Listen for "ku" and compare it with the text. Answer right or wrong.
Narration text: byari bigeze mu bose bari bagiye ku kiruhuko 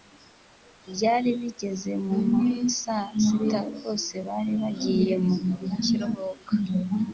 wrong